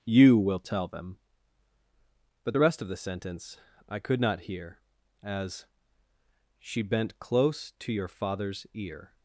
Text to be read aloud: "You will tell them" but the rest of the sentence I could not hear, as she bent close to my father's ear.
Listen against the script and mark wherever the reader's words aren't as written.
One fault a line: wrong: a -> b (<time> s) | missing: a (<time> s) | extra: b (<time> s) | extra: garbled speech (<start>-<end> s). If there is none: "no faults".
wrong: my -> your (7.9 s)